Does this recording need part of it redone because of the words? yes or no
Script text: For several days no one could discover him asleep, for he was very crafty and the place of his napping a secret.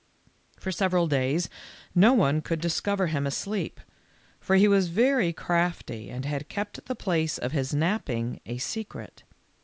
yes